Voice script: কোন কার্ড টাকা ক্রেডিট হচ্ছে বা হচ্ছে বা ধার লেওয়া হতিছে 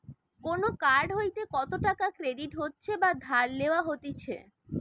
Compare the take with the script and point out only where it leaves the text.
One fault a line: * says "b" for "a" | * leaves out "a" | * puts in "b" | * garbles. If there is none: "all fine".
* puts in "হইতে কত"
* leaves out "হচ্ছে বা"